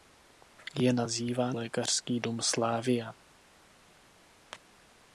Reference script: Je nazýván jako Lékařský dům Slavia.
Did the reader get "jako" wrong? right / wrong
wrong